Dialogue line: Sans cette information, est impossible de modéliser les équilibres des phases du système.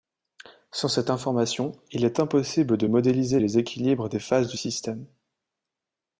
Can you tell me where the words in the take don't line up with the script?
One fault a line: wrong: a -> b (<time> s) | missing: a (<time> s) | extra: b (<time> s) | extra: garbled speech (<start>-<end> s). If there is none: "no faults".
extra: il (1.9 s)